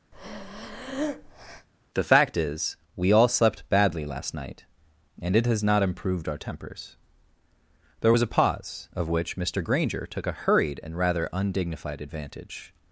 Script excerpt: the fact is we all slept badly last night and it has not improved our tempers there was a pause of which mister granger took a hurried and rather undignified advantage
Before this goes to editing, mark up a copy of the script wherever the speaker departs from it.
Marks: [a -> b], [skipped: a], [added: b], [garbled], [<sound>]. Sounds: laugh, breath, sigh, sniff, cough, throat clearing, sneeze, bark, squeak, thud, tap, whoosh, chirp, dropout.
[breath] the fact is we all slept badly last night and it has not improved our tempers there was a pause of which mister granger took a hurried and rather undignified advantage